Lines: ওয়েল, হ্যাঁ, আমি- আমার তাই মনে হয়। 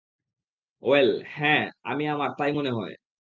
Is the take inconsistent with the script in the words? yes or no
no